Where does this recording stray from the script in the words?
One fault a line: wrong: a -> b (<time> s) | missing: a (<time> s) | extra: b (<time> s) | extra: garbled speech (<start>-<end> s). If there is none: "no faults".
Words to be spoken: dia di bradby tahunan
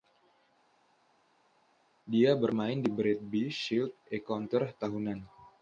extra: bermain (2.3 s)
extra: shield encounter (3.5 s)